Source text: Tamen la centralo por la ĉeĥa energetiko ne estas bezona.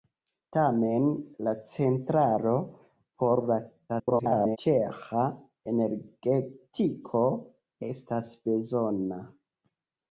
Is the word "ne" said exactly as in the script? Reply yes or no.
no